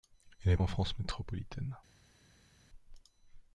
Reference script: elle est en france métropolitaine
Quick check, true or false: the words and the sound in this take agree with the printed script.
true